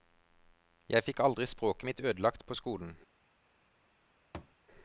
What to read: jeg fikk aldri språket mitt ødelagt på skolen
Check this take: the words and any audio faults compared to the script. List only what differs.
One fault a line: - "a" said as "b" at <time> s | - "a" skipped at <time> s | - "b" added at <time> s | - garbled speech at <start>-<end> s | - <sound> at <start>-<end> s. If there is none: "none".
- thud at 4.3-4.6 s